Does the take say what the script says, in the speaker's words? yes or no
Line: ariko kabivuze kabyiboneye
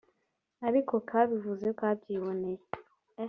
yes